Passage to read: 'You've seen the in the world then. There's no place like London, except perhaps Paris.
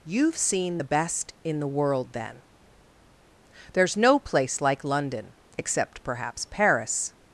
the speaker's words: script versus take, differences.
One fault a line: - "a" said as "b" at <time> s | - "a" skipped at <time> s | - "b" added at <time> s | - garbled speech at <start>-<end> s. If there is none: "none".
- "best" added at 0.8 s